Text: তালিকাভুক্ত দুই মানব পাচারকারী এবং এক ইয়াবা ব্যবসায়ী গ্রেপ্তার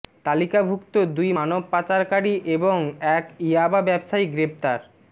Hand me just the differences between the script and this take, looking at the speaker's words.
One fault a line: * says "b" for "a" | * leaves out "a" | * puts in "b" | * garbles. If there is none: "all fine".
all fine